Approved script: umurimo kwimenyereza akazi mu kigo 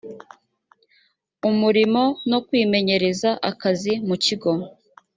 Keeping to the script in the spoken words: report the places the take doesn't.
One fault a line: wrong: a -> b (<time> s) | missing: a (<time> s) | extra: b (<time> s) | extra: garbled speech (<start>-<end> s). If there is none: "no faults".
extra: no (2.3 s)